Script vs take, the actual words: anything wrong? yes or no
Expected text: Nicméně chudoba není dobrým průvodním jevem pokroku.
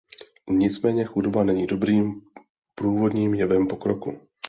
no